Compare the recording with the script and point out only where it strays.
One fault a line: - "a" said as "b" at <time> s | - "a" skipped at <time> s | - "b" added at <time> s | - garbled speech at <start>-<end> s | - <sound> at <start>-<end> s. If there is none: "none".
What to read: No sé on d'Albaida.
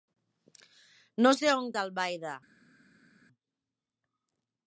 none